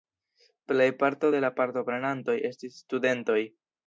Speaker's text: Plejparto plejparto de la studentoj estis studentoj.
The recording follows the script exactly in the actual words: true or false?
false